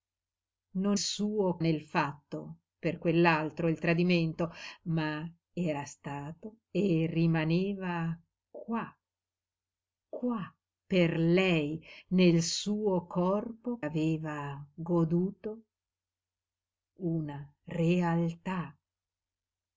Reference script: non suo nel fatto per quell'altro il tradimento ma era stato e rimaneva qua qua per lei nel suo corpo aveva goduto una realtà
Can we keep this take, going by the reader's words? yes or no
yes